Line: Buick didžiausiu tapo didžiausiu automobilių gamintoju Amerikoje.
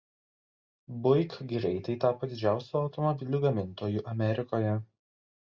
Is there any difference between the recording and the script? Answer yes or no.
yes